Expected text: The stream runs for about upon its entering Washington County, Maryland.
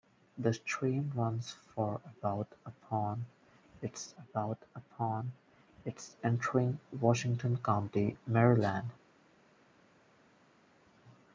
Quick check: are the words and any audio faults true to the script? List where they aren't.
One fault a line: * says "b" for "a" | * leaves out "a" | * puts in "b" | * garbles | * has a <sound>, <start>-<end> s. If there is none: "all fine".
* puts in "about upon its"